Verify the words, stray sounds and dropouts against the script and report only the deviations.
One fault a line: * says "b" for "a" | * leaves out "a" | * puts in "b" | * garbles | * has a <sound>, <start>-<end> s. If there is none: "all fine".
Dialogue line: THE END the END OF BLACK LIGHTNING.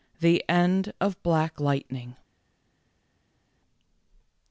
* leaves out "the END"